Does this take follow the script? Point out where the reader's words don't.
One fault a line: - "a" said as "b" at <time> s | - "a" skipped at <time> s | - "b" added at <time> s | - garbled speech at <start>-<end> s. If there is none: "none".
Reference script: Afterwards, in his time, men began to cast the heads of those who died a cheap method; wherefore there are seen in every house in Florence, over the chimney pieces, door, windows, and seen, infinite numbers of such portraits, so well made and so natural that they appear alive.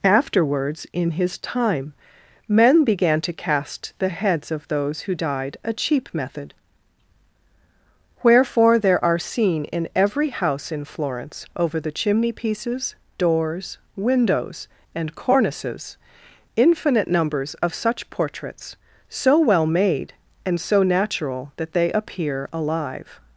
- "door" said as "doors" at 13.2 s
- "seen" said as "cornices" at 15.2 s